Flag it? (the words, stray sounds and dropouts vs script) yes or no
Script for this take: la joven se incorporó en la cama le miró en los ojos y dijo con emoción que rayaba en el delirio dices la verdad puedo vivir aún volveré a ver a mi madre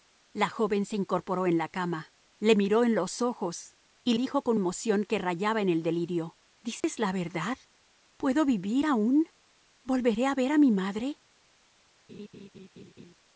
yes